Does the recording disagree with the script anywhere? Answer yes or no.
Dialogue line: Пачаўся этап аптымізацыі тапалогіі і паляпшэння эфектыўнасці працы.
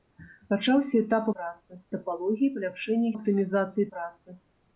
yes